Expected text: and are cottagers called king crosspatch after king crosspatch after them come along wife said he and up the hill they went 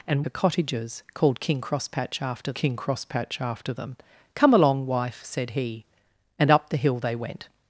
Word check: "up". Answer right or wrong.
right